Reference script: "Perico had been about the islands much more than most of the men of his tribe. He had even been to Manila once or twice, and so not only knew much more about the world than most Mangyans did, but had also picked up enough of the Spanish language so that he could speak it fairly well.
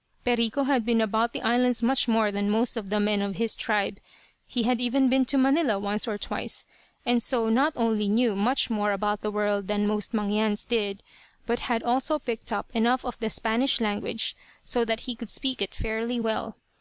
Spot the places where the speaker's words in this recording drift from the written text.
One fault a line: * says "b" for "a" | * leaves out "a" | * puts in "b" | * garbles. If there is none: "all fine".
all fine